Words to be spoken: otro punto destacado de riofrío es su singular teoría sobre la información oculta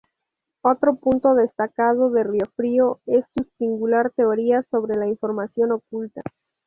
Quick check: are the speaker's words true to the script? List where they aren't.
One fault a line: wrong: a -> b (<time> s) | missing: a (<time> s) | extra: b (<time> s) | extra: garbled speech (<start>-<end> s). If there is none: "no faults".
no faults